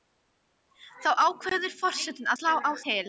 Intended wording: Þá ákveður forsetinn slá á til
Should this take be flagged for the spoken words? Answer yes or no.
no